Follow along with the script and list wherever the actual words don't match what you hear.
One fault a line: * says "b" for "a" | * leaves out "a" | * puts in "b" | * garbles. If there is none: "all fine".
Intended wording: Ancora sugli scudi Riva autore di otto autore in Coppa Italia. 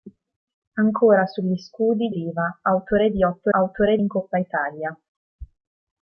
all fine